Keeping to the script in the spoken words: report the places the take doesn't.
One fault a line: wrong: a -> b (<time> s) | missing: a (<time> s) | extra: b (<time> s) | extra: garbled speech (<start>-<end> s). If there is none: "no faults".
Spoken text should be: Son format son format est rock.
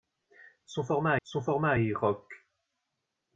no faults